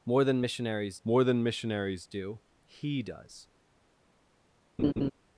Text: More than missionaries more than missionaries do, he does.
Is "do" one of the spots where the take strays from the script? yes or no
no